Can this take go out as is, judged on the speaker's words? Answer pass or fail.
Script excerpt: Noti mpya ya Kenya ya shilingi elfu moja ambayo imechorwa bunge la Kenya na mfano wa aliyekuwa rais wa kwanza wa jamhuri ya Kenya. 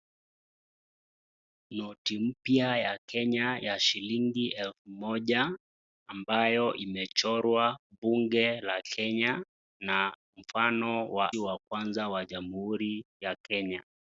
fail